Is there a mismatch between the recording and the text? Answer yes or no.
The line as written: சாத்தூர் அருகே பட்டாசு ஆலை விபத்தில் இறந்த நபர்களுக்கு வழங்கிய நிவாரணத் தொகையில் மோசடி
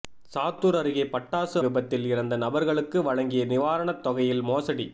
yes